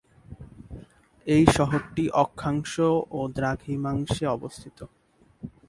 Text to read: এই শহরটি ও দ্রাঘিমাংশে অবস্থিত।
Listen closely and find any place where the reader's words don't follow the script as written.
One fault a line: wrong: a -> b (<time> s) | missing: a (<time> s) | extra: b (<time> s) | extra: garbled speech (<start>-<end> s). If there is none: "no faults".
extra: অক্ষাংশ (2.2 s)